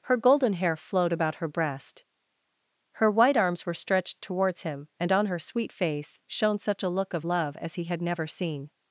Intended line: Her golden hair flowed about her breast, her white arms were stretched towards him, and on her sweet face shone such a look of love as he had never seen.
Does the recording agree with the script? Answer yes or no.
yes